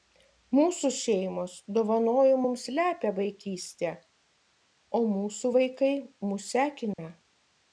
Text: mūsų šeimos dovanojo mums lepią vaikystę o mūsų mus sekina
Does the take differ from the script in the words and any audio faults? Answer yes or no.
yes